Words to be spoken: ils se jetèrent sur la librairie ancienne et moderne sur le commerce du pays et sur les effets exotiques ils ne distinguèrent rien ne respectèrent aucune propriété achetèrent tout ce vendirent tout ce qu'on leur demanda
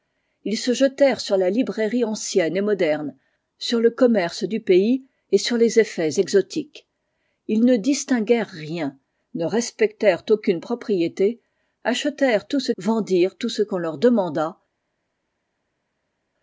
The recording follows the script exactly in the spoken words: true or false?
true